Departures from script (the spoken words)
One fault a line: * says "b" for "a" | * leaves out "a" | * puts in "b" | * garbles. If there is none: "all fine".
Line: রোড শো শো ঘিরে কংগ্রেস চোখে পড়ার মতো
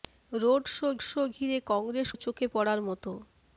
all fine